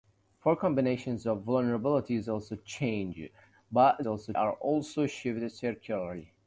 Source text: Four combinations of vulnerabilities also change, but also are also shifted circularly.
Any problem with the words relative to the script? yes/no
no